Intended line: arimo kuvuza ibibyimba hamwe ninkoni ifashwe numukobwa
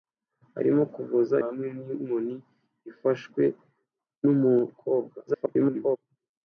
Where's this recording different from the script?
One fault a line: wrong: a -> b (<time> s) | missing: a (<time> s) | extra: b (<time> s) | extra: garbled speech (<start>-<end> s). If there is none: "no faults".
missing: ibibyimba (1.4 s)
extra: garbled speech (5.3-6.0 s)